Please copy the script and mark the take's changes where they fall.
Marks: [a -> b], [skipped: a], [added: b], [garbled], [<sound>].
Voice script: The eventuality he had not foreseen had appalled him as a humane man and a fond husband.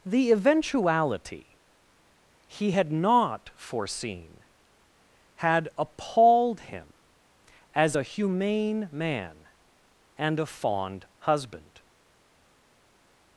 The eventuality he had not foreseen had appalled him as a humane man and a fond husband.